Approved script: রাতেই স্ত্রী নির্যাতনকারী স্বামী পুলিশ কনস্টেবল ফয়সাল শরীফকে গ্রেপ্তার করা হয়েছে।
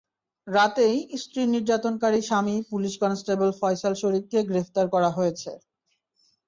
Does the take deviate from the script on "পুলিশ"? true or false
false